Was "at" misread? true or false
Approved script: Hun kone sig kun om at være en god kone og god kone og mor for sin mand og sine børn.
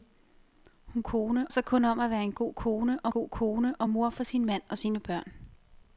false